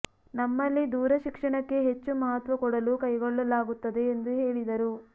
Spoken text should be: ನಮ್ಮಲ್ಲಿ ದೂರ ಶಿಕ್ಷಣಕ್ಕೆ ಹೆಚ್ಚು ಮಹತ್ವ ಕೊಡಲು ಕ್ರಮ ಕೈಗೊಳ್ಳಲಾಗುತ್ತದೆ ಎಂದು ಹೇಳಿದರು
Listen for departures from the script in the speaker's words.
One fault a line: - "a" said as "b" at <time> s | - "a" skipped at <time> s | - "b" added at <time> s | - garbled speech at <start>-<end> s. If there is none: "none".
- "ಕ್ರಮ" skipped at 2.9 s